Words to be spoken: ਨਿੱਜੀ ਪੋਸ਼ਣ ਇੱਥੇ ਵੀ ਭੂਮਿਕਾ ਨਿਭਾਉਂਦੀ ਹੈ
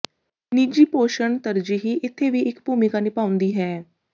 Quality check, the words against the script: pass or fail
fail